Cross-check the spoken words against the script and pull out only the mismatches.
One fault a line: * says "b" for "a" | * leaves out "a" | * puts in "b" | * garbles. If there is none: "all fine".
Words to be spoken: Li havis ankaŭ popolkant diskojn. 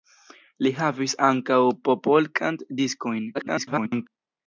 * garbles